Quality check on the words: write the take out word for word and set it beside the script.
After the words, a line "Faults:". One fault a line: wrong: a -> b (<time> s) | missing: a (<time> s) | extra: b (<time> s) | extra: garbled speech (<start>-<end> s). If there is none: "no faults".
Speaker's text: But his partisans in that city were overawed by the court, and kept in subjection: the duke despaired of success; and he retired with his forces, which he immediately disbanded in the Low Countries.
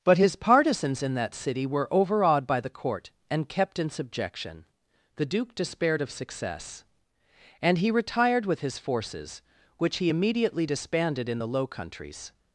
But his partisans in that city were overawed by the court, and kept in subjection: the duke despaired of success; and he retired with his forces, which he immediately disbanded in the Low Countries.
Faults:
no faults